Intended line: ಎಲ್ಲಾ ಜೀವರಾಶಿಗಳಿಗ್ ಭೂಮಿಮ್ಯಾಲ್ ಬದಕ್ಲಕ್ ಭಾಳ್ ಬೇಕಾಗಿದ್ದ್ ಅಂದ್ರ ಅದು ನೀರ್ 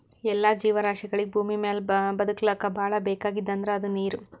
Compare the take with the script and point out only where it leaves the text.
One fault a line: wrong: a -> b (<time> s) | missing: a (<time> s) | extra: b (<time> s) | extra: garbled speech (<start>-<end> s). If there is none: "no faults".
no faults